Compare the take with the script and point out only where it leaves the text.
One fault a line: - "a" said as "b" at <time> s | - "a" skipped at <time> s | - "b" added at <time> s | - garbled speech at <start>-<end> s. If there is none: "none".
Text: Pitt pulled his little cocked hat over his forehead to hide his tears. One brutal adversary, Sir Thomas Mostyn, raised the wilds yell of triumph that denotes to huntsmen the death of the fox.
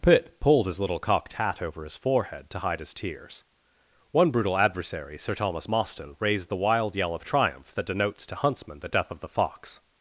- "wilds" said as "wild" at 6.6 s